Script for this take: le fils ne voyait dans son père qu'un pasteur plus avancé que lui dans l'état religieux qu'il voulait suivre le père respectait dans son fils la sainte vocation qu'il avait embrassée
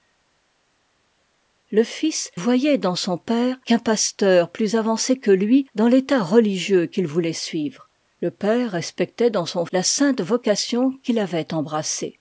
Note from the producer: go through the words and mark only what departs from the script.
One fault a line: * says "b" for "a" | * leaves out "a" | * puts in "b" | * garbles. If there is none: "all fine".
* leaves out "ne"
* leaves out "fils"